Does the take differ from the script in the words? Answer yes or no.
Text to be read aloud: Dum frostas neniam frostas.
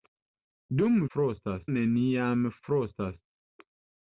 no